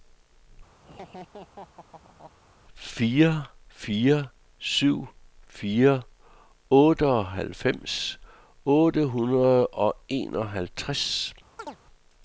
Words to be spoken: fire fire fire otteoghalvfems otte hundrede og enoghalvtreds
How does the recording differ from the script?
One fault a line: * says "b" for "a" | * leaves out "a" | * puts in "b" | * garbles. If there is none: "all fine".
* puts in "syv"